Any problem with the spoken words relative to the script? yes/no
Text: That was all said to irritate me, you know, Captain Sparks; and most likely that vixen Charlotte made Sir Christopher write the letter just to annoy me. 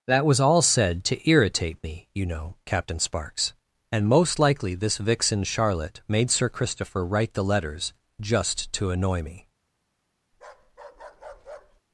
yes